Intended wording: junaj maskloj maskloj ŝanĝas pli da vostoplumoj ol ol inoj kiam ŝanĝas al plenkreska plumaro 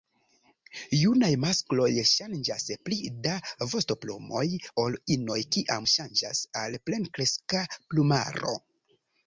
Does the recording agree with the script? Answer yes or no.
no